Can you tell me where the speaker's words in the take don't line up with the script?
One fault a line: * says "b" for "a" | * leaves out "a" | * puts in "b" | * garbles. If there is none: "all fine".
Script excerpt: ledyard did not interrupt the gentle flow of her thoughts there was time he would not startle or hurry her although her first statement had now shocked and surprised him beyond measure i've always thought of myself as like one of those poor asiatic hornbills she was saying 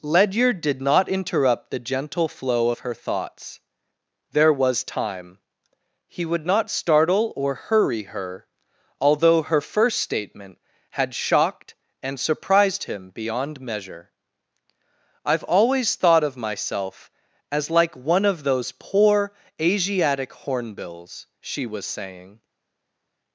* leaves out "now"